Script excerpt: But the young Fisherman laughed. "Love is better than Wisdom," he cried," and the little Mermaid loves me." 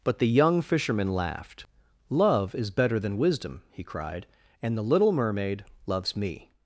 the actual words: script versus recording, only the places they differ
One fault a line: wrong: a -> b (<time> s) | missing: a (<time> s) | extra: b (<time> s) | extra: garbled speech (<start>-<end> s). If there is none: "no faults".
no faults